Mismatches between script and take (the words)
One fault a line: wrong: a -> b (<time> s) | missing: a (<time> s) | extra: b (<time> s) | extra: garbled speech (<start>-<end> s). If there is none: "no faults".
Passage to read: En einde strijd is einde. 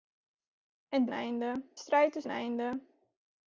no faults